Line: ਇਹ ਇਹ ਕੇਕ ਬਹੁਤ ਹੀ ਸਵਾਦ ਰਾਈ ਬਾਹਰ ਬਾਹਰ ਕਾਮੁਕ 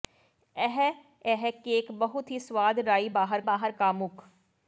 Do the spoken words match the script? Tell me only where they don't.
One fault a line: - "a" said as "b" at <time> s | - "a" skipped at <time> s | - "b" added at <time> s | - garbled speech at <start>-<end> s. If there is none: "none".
none